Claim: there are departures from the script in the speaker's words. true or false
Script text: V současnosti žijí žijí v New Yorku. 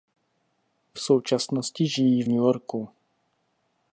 true